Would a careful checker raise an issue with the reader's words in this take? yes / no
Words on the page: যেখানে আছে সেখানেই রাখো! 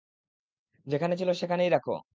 yes